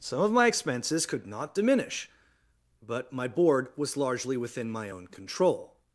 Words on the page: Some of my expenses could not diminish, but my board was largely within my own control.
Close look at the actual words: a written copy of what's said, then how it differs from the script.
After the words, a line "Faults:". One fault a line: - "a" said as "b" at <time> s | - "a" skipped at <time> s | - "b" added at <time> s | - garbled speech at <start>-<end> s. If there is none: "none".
Some of my expenses could not diminish, but my board was largely within my own control.
Faults:
none